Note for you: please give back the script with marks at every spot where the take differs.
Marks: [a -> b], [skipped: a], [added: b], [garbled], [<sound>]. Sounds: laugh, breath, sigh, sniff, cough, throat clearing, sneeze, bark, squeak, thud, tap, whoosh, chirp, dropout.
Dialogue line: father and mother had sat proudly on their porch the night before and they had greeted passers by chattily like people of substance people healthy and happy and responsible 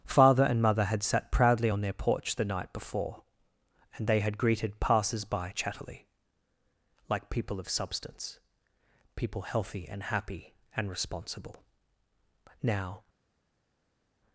father and mother had sat proudly on their porch the night before and they had greeted passers by chattily like people of substance people healthy and happy and responsible [added: now]